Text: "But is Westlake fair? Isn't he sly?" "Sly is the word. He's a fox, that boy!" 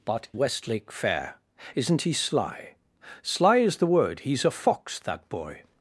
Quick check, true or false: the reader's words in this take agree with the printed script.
false